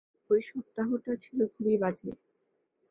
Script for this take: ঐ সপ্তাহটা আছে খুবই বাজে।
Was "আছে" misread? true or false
true